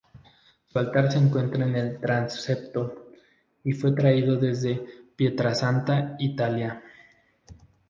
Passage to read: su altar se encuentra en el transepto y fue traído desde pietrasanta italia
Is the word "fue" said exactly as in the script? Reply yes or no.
yes